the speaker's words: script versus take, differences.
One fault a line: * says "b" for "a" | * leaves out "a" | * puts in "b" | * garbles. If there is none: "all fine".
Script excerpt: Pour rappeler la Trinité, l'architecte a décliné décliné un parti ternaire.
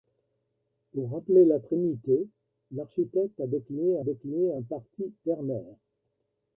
all fine